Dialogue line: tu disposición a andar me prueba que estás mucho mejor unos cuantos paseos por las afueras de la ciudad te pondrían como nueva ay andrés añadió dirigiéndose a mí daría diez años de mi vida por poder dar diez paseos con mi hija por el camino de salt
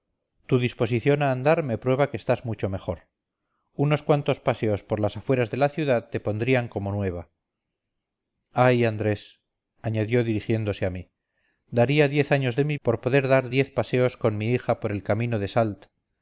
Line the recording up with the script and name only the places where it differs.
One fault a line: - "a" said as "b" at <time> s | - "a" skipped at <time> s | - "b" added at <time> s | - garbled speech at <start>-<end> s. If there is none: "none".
- "vida" skipped at 12.8 s